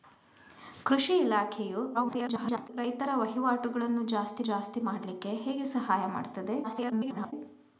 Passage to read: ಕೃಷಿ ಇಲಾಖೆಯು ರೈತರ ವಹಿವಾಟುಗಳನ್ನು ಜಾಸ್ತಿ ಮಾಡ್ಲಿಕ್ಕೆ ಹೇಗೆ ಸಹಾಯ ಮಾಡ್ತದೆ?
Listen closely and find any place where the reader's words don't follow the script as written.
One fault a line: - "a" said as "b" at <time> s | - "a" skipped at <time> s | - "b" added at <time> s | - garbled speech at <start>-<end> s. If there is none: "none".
- garbled speech at 1.9-2.7 s
- "ಜಾಸ್ತಿ" added at 4.4 s
- garbled speech at 6.6-7.3 s